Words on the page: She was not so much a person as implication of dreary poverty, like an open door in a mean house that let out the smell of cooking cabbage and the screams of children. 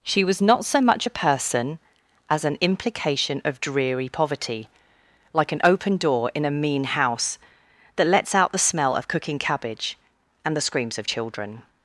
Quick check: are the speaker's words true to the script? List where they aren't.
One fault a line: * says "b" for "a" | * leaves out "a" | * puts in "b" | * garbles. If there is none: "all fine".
* puts in "an"
* says "lets" for "let"